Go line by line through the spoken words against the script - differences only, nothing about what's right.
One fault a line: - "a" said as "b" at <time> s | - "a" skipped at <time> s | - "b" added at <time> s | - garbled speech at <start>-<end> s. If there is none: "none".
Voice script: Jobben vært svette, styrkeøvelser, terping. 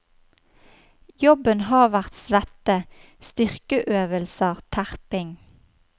- "har" added at 1.7 s